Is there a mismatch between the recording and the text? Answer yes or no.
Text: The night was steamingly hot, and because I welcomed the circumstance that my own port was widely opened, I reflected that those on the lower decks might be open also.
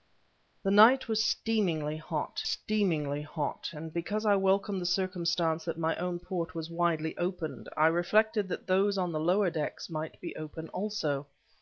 yes